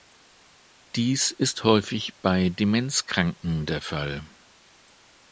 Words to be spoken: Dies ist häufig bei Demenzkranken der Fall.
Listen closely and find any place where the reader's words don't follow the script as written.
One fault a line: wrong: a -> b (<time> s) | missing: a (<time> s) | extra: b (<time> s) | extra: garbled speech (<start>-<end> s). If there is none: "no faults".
no faults